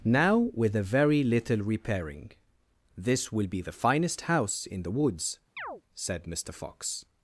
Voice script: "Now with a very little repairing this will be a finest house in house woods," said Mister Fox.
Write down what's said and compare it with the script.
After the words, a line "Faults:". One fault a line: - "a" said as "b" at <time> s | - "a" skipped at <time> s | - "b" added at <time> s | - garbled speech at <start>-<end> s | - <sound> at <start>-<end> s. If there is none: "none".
"Now with a very little repairing this will be the finest house in the woods," said Mister Fox.
Faults:
- "a" said as "the" at 3.6 s
- "house" said as "the" at 4.8 s
- chirp at 5.6-5.8 s